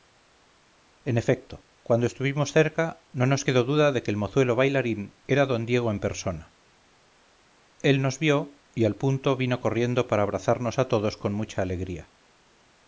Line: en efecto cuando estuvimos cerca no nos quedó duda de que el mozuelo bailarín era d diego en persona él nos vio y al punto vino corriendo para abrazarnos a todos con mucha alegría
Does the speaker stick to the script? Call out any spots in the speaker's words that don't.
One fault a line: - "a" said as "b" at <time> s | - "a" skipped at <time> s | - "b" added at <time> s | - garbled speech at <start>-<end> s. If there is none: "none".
none